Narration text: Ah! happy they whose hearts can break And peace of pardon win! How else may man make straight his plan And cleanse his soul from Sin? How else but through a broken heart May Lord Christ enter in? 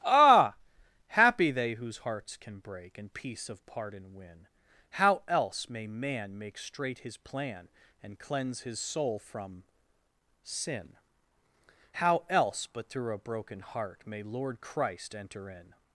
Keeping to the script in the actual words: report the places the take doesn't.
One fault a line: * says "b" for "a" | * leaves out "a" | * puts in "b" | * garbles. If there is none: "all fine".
all fine